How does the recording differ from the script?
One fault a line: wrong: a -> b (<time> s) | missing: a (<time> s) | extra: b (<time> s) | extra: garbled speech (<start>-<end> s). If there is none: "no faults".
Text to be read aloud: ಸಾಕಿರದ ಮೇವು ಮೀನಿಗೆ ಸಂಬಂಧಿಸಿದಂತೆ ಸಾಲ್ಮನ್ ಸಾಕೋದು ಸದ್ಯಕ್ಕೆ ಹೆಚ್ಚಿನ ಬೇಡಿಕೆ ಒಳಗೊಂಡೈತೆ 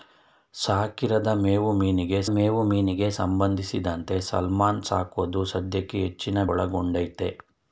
extra: ಮೇವು ಮೀನಿಗೆ (2.3 s)
missing: ಬೇಡಿಕೆ (6.4 s)